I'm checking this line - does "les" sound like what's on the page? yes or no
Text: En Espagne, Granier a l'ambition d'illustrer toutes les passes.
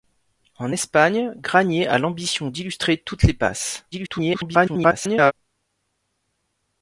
yes